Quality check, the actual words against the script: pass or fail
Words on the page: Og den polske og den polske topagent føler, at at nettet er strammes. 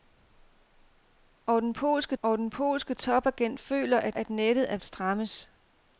pass